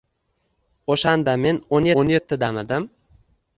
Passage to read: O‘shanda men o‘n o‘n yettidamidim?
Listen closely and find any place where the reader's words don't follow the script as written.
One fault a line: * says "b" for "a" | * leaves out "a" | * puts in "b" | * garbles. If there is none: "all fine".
all fine